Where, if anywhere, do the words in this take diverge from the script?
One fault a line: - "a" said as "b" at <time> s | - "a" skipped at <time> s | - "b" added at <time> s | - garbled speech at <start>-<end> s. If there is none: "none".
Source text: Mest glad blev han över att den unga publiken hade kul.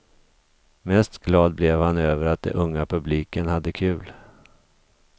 none